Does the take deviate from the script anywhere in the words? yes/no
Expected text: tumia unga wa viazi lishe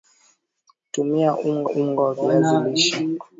yes